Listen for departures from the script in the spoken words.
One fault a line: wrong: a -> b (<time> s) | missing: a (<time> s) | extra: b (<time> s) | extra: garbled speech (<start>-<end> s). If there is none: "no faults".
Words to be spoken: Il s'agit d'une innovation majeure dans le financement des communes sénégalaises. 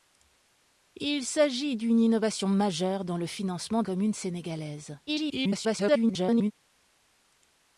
missing: des (3.8 s)
extra: garbled speech (5.1-6.5 s)